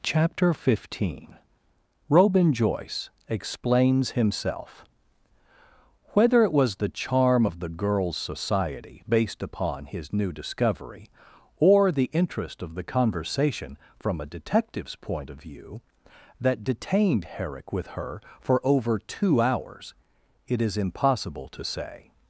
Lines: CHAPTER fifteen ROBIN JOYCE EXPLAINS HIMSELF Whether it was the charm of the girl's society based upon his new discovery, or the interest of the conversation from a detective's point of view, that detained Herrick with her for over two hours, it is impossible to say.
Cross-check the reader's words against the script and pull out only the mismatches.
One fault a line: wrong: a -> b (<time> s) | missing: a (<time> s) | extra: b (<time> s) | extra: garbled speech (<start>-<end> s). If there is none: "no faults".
no faults